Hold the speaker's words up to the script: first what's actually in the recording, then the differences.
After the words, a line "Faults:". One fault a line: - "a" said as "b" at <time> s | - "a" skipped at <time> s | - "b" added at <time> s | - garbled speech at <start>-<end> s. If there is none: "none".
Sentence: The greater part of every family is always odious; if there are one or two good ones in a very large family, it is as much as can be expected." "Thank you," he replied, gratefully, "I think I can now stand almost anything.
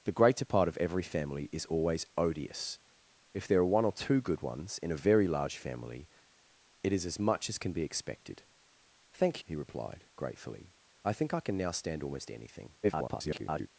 The greater part of every family is always odious; if there are one or two good ones in a very large family, it is as much as can be expected." "Thank," he replied, gratefully, "I think I can now stand almost anything. [garbled]
Faults:
- "you" skipped at 9.4 s
- garbled speech at 12.8-13.7 s